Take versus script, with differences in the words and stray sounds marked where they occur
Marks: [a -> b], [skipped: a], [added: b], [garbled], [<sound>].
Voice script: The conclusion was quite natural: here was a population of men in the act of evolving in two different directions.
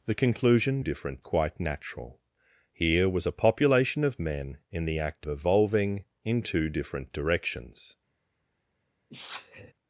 The conclusion [was -> different] quite natural: here was a population of men in the act [skipped: of] evolving in two different directions. [sneeze]